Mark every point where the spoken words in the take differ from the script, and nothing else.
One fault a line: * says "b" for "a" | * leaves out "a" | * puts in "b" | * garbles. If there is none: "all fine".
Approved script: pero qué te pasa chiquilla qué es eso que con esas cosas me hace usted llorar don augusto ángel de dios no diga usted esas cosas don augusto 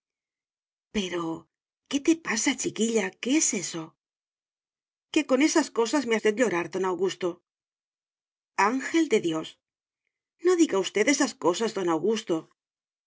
* leaves out "hace"